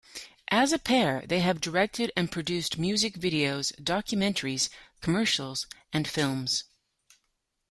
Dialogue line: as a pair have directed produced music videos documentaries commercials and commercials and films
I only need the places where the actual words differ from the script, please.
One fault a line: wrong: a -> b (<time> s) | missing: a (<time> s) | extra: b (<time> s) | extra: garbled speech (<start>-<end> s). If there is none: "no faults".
extra: they (1.3 s)
extra: and (2.2 s)
missing: commercials and (6.1 s)